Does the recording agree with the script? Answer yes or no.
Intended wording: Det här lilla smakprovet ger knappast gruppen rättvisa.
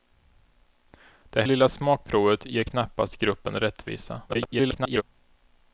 no